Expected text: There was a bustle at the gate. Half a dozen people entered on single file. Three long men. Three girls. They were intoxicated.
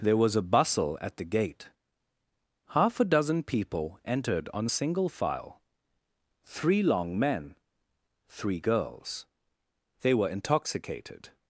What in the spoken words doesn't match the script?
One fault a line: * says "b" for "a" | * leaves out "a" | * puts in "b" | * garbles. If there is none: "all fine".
all fine